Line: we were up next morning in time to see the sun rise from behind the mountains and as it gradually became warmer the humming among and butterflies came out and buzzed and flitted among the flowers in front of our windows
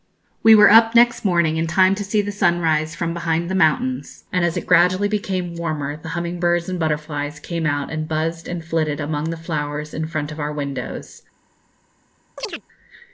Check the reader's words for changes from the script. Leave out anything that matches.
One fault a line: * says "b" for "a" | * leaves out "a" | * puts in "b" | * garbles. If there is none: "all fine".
* says "birds" for "among"